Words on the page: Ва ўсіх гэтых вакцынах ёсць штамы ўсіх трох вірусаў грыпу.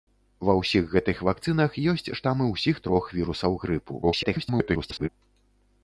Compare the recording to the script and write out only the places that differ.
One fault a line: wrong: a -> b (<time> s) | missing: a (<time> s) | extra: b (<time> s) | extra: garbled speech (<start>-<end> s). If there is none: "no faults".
extra: garbled speech (4.0-5.1 s)